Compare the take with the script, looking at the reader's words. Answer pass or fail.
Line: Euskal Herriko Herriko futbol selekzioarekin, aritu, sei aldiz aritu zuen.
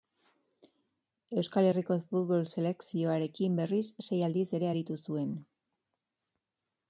fail